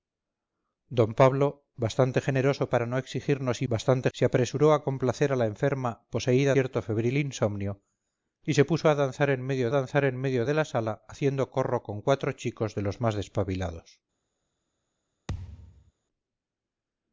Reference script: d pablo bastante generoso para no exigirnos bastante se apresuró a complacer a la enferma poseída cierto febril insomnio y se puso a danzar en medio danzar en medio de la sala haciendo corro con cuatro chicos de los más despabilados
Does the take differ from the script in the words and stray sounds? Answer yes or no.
yes